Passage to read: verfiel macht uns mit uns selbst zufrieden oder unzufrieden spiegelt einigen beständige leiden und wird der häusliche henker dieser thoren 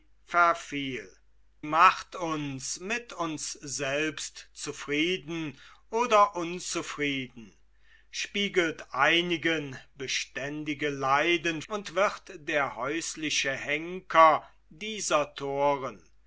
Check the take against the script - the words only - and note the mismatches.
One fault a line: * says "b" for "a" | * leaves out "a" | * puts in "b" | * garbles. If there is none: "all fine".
all fine